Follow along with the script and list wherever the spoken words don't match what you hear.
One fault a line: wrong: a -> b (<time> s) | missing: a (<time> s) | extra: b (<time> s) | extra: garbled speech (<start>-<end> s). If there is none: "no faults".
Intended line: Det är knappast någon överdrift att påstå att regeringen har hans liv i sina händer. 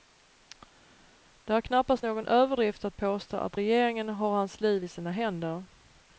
no faults